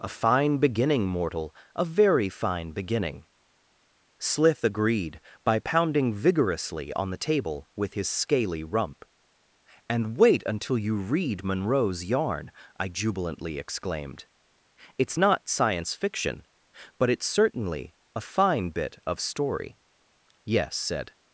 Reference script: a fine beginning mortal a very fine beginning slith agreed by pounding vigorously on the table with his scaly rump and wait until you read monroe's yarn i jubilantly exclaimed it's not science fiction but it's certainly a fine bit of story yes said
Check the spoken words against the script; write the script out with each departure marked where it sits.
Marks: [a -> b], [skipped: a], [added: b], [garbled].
a fine beginning mortal a very fine beginning slith agreed by pounding vigorously on the table with his scaly rump and wait until you read monroe's yarn i jubilantly exclaimed it's not science fiction but it's certainly a fine bit of story yes said